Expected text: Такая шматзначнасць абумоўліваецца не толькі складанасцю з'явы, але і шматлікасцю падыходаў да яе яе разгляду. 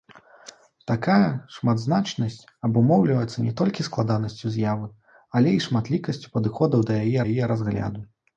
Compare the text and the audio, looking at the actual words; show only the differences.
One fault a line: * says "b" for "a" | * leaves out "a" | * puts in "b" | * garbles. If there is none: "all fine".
all fine